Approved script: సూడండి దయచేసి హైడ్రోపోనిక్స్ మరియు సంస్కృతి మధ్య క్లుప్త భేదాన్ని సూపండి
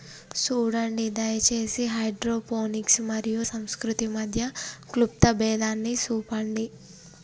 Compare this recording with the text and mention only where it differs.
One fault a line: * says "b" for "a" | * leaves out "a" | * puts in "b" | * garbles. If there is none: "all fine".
all fine